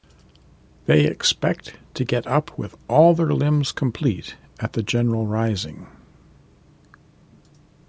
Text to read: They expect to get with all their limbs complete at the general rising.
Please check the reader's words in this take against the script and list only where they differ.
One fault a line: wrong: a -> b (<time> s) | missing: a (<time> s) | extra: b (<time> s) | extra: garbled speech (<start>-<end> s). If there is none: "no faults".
extra: up (2.2 s)